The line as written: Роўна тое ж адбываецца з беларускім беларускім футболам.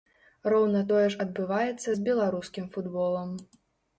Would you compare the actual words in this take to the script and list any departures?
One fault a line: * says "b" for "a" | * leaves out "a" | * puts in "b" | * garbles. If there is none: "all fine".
* leaves out "беларускім"